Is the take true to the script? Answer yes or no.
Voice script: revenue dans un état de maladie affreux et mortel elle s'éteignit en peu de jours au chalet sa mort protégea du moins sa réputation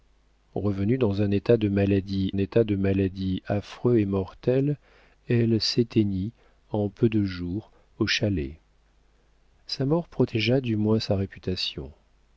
no